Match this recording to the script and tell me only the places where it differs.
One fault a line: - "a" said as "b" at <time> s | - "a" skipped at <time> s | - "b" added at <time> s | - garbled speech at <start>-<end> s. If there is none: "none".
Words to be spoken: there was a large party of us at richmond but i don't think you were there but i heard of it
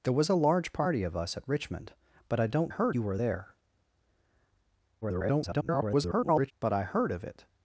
- "think" said as "heard" at 2.7 s
- garbled speech at 5.0-6.5 s